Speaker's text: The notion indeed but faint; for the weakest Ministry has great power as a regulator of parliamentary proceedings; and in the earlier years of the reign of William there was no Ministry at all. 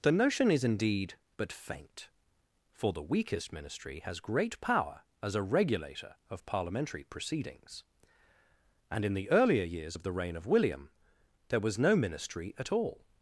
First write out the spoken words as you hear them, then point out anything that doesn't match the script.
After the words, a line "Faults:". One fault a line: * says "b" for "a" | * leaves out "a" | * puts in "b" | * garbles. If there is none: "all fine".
The notion is indeed but faint; for the weakest Ministry has great power as a regulator of parliamentary proceedings; and in the earlier years of the reign of William there was no Ministry at all.
Faults:
* puts in "is"